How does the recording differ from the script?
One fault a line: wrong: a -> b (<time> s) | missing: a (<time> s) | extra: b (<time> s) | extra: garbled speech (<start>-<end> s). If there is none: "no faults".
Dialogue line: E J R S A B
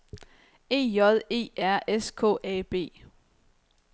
extra: E (1.3 s)
extra: K (2.1 s)